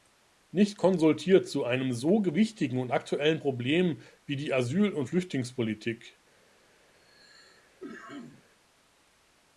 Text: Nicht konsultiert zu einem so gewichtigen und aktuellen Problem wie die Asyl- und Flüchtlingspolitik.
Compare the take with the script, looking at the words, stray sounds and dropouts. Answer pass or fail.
fail